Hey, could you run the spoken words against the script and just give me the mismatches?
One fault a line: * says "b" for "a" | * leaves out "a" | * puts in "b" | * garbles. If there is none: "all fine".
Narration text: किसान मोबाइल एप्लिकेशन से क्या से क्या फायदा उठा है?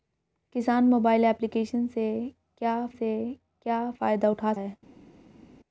all fine